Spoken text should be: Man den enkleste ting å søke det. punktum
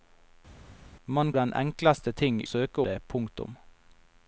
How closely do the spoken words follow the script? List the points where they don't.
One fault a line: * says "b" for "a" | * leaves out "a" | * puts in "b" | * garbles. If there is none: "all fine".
all fine